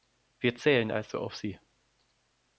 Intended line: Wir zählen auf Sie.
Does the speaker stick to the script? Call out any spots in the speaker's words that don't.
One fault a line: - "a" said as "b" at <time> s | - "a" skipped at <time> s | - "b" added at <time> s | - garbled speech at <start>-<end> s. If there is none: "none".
- "also" added at 0.9 s